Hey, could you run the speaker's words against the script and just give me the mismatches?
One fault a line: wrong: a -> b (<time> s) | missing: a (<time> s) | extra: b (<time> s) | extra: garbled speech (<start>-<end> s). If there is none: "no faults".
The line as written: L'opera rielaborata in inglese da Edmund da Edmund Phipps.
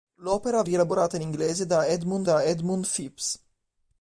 no faults